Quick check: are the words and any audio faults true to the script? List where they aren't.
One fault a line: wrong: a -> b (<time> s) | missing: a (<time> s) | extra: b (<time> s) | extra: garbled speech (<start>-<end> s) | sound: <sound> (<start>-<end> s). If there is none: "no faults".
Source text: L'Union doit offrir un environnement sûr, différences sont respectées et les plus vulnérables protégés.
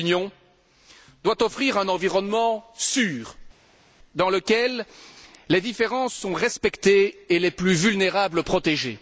extra: dans lequel les (4.2 s)